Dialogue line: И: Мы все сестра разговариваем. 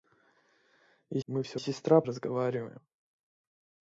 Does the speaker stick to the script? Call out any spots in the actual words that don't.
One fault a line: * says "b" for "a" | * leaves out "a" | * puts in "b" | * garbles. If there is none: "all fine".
all fine